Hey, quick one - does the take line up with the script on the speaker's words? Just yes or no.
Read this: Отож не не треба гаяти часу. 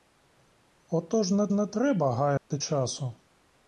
yes